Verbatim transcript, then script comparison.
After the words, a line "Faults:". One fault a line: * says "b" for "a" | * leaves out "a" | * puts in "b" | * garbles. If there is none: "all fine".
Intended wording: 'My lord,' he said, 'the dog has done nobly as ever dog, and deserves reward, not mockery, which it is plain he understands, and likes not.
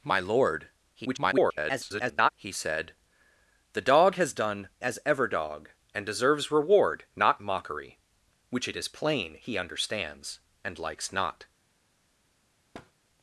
'My lord,' [garbled] he said, 'the dog has done as ever dog, and deserves reward, not mockery, which it is plain he understands, and likes not.
Faults:
* garbles
* leaves out "nobly"